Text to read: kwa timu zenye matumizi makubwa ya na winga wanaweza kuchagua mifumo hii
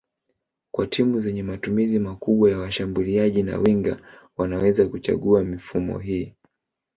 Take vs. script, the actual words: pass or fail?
fail